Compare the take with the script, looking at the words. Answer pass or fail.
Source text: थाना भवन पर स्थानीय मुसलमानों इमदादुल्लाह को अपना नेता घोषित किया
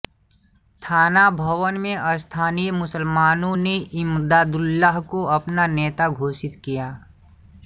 fail